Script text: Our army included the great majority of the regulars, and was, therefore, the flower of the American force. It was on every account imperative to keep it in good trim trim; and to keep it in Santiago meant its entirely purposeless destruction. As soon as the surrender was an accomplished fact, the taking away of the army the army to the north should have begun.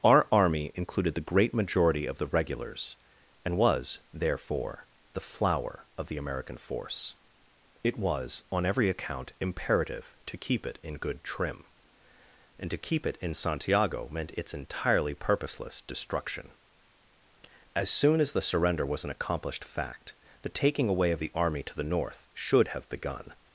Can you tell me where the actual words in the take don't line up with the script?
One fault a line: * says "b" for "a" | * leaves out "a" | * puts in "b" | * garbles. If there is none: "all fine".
* leaves out "trim"
* leaves out "the army"